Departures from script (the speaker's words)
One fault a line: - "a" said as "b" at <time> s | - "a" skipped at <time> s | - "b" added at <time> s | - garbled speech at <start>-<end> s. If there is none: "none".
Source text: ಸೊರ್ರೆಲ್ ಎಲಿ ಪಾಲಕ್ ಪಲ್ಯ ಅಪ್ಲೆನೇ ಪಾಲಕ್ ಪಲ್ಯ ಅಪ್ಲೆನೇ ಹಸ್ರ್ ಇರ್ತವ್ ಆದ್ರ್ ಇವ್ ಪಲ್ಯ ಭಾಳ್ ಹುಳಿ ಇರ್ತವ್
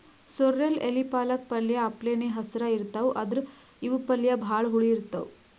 - "ಪಾಲಕ್ ಪಲ್ಯ ಅಪ್ಲೆನೇ" skipped at 2.3 s